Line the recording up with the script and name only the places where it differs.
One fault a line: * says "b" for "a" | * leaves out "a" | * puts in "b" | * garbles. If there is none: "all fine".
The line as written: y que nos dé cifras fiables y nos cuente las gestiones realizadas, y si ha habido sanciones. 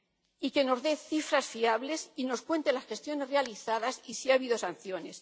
all fine